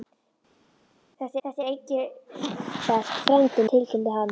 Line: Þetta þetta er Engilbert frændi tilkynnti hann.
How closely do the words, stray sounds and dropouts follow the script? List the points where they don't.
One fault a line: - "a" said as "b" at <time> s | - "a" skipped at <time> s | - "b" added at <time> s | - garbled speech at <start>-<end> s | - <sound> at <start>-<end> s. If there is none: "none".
none